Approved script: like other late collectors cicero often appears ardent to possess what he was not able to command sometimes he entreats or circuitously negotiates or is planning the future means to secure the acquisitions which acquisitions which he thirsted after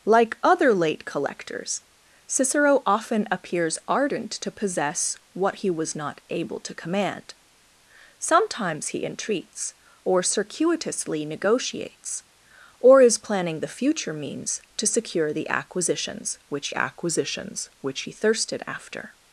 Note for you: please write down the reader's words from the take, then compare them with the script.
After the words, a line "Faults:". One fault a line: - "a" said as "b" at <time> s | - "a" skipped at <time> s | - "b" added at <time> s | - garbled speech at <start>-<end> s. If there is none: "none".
like other late collectors cicero often appears ardent to possess what he was not able to command sometimes he entreats or circuitously negotiates or is planning the future means to secure the acquisitions which acquisitions which he thirsted after
Faults:
none